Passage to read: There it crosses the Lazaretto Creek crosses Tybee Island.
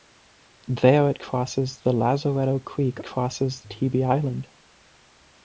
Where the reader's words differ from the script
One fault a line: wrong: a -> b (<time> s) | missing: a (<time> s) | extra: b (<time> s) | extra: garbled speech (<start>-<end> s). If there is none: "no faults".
no faults